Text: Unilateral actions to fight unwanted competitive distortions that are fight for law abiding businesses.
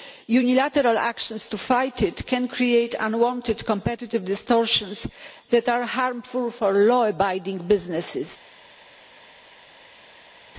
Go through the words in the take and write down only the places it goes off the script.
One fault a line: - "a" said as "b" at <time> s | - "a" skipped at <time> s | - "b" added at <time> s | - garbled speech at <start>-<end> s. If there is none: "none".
- "it can create" added at 2.0 s
- "fight" said as "harmful" at 5.8 s